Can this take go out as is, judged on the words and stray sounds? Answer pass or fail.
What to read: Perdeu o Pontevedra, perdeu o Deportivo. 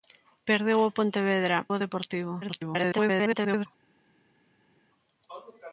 fail